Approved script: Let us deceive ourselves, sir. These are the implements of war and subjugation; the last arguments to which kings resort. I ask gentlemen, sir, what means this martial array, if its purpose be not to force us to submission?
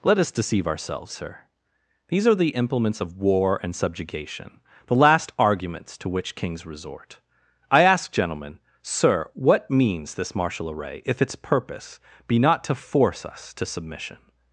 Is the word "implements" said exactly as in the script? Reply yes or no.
yes